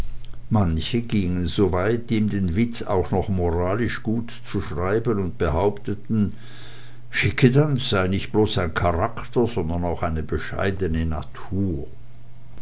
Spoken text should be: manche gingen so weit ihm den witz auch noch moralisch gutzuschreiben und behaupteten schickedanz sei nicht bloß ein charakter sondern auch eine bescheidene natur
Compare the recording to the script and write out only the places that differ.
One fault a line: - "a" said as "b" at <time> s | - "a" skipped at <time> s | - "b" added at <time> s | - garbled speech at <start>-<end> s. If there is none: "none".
none